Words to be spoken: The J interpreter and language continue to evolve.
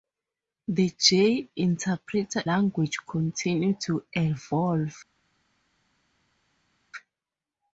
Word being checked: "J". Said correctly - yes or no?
yes